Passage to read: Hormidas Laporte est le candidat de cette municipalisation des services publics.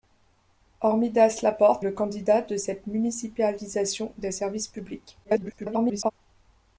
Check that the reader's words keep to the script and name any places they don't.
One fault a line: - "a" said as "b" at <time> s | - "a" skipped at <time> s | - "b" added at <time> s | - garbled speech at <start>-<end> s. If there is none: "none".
- "est" skipped at 1.9 s
- garbled speech at 5.2-6.1 s